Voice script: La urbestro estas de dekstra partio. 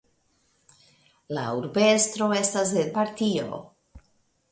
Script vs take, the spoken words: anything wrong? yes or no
yes